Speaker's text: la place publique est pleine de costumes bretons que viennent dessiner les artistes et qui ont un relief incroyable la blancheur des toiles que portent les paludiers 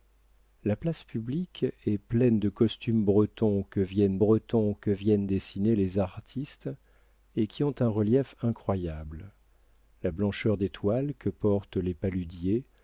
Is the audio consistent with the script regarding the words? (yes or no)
no